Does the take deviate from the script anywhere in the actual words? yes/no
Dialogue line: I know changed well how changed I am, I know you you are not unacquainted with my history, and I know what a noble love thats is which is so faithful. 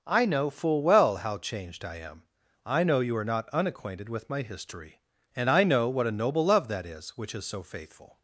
yes